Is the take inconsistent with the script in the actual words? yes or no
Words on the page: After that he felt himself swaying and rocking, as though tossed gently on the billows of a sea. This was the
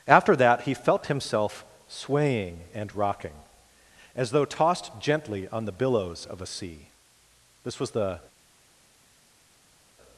no